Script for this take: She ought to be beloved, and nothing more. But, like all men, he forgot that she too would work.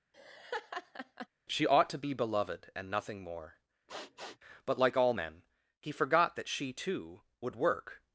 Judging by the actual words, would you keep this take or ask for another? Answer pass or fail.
pass